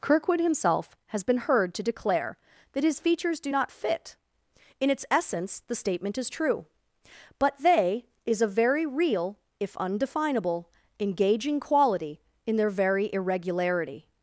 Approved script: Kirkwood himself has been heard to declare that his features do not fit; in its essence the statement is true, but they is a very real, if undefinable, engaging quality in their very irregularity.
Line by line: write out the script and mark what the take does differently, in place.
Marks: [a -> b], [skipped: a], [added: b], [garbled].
Kirkwood himself has been heard to declare that his features do not fit; in its essence the statement is true, but they is a very real, if undefinable, engaging quality in their very irregularity.